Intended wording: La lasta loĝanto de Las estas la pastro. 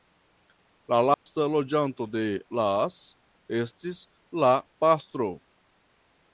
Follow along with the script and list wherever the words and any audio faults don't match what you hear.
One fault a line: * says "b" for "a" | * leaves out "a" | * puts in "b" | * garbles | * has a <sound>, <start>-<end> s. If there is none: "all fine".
* has a dropout, 1.1-1.3 s
* says "estis" for "estas"